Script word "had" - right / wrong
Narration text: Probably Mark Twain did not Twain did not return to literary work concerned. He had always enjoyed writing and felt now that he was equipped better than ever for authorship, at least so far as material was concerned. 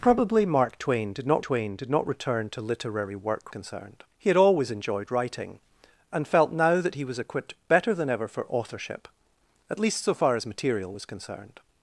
right